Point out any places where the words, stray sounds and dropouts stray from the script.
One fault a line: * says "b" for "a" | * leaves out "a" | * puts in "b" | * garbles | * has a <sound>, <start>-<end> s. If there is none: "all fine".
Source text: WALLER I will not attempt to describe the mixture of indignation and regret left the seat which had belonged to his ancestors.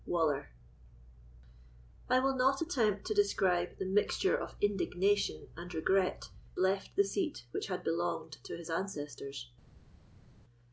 all fine